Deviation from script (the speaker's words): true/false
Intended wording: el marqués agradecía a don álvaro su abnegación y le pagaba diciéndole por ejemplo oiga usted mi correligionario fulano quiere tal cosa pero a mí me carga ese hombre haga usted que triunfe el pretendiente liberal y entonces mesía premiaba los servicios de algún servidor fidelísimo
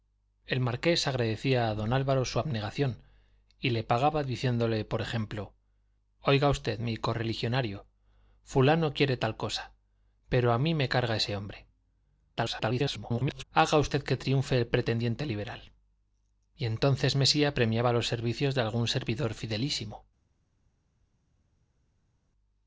true